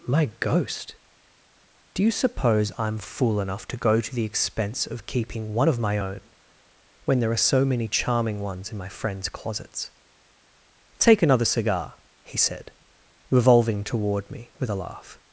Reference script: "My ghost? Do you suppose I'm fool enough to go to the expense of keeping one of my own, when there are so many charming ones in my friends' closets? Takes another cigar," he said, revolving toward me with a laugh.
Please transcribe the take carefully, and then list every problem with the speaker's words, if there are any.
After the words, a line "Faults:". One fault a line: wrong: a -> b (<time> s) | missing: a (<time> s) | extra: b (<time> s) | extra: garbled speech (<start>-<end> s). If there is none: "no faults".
"My ghost? Do you suppose I'm fool enough to go to the expense of keeping one of my own, when there are so many charming ones in my friends' closets? Take another cigar," he said, revolving toward me with a laugh.
Faults:
wrong: Takes -> Take (11.0 s)